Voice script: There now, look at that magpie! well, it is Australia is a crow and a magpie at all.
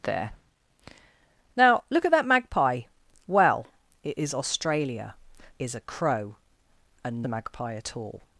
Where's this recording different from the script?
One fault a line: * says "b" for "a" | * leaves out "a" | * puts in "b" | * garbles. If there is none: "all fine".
all fine